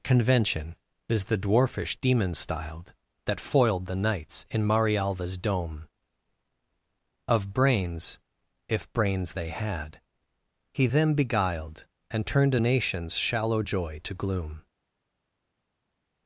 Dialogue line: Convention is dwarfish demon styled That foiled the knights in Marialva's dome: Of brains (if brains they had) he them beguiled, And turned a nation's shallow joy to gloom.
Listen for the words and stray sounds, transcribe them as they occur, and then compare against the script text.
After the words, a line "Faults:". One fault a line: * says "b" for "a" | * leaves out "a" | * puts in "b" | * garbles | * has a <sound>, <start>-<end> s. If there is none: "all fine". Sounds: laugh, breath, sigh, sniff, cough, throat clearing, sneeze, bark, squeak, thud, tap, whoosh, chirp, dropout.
Convention is the dwarfish demon styled That foiled the knights in Marialva's dome: Of brains (if brains they had) he them beguiled, And turned a nation's shallow joy to gloom.
Faults:
* puts in "the"